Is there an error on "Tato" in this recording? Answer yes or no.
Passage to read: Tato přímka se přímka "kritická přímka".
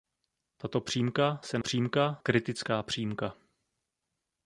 no